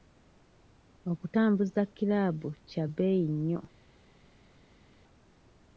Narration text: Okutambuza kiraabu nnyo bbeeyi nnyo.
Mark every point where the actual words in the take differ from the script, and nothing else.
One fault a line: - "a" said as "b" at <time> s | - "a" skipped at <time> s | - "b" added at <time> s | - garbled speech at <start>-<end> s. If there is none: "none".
- "nnyo" said as "kya" at 2.7 s